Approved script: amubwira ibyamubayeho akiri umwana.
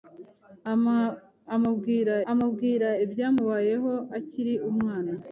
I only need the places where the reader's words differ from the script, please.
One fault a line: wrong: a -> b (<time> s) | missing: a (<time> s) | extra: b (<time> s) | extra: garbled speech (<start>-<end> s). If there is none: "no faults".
extra: amubwira (2.3 s)